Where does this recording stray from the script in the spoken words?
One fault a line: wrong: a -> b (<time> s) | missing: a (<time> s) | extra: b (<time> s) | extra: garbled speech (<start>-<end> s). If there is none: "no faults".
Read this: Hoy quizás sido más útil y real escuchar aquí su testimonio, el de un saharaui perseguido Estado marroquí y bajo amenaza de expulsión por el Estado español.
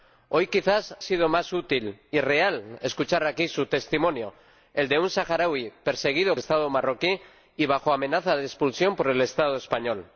no faults